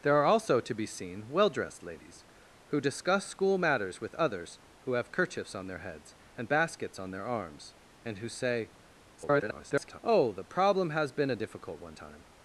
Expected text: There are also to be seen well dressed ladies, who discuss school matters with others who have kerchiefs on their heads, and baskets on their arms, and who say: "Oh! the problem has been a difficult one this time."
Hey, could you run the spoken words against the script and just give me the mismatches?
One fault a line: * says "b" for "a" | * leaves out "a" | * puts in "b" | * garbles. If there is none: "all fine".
* garbles
* leaves out "this"